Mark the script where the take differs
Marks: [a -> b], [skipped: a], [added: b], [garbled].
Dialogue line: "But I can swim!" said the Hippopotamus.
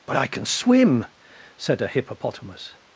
"But I can swim!" said [the -> a] Hippopotamus.